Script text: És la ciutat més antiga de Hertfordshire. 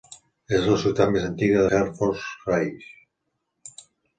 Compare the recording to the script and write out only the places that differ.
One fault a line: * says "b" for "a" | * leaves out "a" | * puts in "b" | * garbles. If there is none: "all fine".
* leaves out "de"